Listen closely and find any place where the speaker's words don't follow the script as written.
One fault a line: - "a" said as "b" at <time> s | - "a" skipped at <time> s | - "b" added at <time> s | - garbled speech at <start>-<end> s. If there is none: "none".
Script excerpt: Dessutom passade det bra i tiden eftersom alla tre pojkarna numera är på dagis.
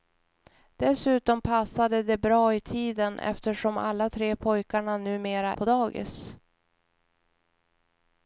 - "är" skipped at 5.6 s